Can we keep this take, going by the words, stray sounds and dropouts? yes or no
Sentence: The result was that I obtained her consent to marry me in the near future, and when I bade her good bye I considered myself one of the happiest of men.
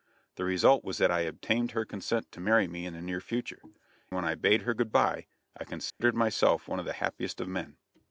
no